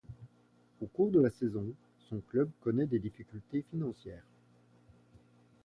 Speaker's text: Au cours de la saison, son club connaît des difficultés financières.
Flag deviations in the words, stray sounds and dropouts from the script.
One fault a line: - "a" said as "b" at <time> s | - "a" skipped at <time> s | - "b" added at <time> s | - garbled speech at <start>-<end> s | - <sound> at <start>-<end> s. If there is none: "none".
none